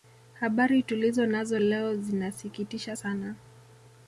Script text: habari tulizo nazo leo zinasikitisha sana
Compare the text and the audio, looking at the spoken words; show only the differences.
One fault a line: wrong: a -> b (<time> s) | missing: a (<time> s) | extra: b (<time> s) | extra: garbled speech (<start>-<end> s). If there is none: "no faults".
no faults